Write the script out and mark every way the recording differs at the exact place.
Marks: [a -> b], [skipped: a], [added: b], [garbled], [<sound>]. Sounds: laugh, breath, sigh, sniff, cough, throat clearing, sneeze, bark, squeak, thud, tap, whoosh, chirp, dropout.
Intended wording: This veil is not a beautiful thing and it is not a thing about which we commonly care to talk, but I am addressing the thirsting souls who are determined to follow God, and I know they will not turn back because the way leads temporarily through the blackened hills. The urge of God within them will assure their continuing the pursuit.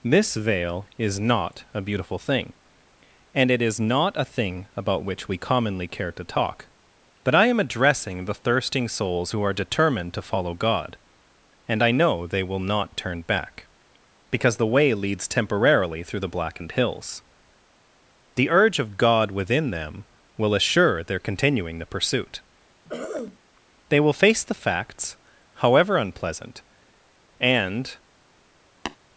This veil is not a beautiful thing and it is not a thing about which we commonly care to talk, but I am addressing the thirsting souls who are determined to follow God, and I know they will not turn back because the way leads temporarily through the blackened hills. The urge of God within them will assure their continuing the pursuit. [throat clearing] [added: They will face the facts however unpleasant and] [tap]